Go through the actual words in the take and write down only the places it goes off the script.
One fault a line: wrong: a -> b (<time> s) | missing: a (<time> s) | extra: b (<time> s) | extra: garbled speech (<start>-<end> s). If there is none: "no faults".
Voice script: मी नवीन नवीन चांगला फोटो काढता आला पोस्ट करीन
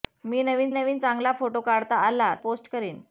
no faults